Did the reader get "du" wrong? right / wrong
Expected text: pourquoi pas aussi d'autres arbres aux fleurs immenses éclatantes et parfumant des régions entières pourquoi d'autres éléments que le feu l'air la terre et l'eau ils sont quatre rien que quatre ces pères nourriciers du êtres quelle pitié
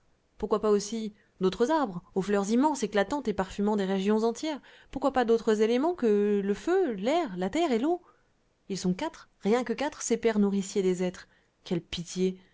wrong